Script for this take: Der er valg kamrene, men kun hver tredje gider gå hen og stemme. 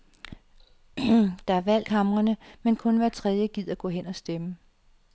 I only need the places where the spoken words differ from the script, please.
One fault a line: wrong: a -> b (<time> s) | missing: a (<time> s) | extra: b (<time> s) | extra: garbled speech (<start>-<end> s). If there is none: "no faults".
no faults